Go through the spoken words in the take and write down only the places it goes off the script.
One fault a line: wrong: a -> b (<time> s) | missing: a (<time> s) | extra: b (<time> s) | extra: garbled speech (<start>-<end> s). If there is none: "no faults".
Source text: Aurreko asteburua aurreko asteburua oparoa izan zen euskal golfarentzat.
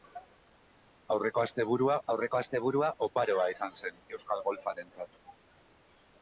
no faults